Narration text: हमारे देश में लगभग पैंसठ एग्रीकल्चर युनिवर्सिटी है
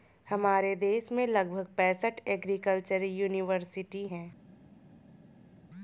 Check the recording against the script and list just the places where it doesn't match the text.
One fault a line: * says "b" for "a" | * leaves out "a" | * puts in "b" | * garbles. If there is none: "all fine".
all fine